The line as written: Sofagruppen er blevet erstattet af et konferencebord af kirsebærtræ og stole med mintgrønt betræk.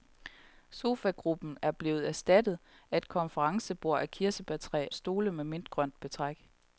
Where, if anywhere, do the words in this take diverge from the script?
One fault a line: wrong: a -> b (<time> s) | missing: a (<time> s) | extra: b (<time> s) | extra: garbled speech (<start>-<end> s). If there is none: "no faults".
missing: og (4.9 s)